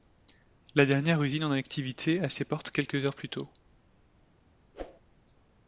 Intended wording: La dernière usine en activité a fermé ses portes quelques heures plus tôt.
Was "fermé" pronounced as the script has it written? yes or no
no